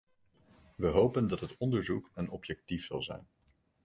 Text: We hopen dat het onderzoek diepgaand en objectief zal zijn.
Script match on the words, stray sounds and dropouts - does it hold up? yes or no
no